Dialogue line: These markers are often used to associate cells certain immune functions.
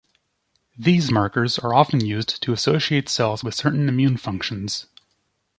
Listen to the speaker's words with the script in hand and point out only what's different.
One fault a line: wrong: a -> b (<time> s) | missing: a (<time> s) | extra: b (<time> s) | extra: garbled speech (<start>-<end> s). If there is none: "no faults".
extra: with (3.4 s)